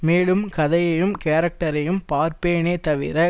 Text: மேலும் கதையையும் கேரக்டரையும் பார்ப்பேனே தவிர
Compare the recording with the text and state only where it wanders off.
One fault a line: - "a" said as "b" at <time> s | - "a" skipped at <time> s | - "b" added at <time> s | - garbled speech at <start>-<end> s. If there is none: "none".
none